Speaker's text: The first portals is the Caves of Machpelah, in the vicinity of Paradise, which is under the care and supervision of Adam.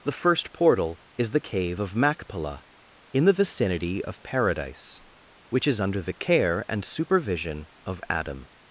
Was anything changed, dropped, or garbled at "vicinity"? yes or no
no